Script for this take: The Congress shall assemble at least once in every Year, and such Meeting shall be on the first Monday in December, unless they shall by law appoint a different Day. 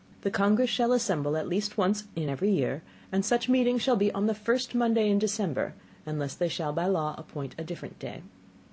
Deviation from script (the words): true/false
false